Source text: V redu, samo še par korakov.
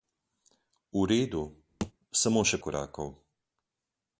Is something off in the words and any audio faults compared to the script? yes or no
yes